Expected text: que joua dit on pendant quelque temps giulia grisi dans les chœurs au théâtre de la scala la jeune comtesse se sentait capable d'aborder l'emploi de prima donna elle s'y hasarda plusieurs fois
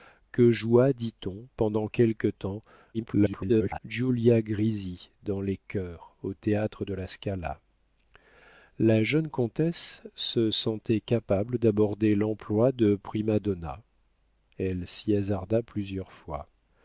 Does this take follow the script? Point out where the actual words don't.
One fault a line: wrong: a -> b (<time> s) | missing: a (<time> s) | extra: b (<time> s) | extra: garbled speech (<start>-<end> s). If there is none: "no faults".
extra: garbled speech (2.9-3.8 s)